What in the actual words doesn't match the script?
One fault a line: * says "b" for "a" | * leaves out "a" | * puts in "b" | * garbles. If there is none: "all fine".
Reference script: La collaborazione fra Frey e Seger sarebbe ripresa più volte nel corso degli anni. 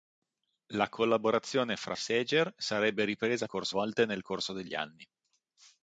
* leaves out "Frey e"
* says "corso" for "più"